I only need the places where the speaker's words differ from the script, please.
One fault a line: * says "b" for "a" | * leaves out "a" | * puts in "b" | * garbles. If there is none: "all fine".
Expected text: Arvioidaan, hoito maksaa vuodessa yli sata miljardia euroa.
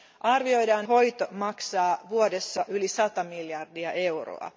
all fine